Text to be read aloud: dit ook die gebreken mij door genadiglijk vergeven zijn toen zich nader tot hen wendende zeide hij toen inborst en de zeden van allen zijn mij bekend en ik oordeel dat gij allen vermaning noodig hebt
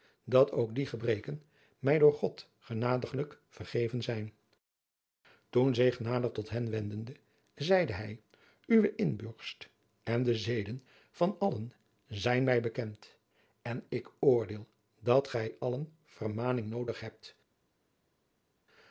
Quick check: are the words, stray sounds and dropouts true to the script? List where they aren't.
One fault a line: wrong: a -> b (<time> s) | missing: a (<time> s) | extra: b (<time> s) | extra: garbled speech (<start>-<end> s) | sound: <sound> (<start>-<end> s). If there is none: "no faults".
wrong: dit -> dat (0.2 s)
extra: god (2.1 s)
wrong: toen -> uwe (8.6 s)